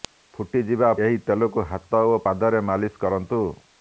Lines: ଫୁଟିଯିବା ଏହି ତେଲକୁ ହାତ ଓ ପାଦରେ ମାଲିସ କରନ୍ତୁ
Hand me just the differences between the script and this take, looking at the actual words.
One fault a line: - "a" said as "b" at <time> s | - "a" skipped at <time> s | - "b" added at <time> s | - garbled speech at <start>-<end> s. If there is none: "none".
none